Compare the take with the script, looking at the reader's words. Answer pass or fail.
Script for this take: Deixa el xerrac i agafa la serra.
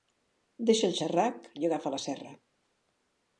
pass